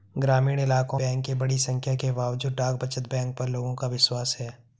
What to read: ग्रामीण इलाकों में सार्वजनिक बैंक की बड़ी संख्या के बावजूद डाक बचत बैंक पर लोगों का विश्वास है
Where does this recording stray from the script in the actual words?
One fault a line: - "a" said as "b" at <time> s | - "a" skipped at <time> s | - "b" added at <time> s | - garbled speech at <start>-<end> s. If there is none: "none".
- "में सार्वजनिक" skipped at 1.0 s